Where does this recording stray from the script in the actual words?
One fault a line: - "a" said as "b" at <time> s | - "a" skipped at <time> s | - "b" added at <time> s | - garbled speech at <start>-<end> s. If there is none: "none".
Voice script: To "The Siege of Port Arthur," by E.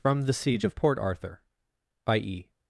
- "To" said as "From" at 0.0 s